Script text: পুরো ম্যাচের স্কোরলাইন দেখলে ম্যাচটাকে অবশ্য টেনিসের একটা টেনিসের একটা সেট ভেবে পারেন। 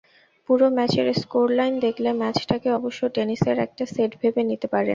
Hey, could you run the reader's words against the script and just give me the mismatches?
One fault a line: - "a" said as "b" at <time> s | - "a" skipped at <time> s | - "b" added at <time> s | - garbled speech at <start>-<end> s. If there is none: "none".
- "টেনিসের একটা" skipped at 3.8 s
- "নিতে" added at 4.5 s